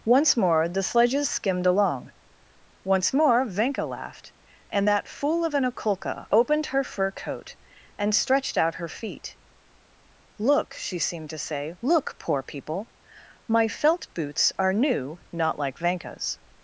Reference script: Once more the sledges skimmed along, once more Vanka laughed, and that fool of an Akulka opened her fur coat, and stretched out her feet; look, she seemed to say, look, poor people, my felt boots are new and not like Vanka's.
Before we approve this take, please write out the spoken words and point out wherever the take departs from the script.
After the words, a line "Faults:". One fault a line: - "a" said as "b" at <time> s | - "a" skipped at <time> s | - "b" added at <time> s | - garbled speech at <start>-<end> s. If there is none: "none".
Once more the sledges skimmed along, once more Vanka laughed, and that fool of an Akulka opened her fur coat, and stretched out her feet; look, she seemed to say, look, poor people, my felt boots are new not like Vanka's.
Faults:
- "and" skipped at 15.2 s